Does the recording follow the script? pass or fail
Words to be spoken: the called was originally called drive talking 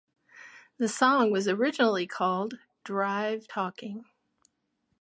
fail